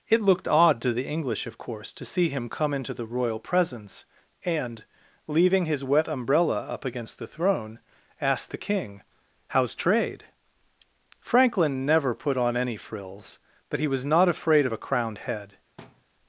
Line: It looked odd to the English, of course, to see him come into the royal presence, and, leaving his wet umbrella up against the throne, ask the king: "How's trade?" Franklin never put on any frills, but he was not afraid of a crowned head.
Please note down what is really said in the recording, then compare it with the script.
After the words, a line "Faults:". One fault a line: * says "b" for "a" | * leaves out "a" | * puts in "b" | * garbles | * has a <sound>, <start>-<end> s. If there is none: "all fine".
It looked odd to the English, of course, to see him come into the royal presence, and, leaving his wet umbrella up against the throne, ask the king: "How's trade?" Franklin never put on any frills, but he was not afraid of a crowned head.
Faults:
* has a thud, 15.8-16.0 s